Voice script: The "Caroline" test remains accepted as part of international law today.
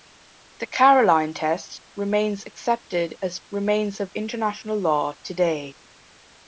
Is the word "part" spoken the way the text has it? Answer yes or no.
no